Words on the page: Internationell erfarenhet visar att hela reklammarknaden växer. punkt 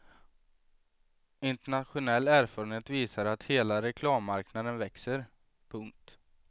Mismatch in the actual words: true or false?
false